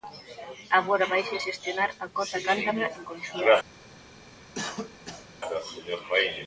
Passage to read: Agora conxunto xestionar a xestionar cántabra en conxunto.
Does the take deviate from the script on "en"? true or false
false